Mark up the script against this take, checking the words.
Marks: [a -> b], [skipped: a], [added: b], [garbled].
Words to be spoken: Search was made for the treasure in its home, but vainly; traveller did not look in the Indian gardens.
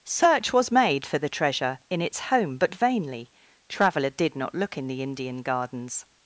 Search was made for the treasure in its home, but vainly; traveller did not look in the Indian gardens.